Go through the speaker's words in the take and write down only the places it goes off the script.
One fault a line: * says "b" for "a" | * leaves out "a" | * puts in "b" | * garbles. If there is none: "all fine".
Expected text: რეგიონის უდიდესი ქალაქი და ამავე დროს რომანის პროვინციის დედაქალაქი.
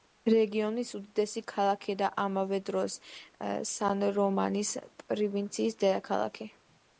* puts in "სან"